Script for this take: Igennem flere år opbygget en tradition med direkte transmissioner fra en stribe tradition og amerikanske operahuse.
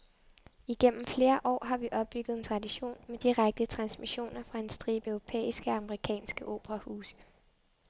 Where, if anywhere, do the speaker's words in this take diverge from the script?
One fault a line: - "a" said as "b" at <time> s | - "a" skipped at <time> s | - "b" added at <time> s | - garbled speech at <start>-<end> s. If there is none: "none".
- "har vi" added at 1.6 s
- "tradition" said as "europæiske" at 5.1 s